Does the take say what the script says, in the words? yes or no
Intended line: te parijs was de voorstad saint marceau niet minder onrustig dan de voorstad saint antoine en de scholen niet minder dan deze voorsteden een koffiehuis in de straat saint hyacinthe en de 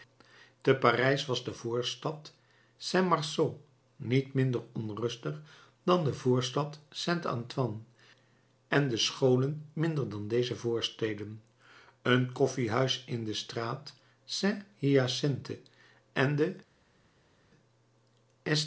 no